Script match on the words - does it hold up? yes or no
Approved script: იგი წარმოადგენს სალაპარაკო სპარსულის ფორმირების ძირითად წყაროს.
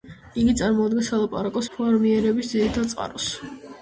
no